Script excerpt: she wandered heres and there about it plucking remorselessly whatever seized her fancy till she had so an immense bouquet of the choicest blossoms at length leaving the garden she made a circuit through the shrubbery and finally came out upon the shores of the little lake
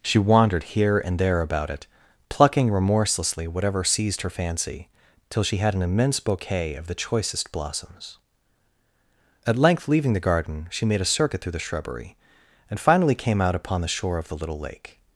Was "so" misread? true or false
true